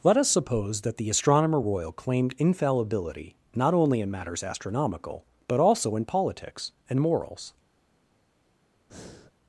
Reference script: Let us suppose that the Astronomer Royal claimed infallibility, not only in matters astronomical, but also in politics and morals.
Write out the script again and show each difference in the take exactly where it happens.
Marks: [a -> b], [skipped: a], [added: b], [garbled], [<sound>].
Let us suppose that the Astronomer Royal claimed infallibility, not only in matters astronomical, but also in politics and morals. [breath]